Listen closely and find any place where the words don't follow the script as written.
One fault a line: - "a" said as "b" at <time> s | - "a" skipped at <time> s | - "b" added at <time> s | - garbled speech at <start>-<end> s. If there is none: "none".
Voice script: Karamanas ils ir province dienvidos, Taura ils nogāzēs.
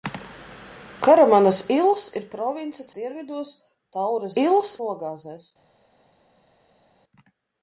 none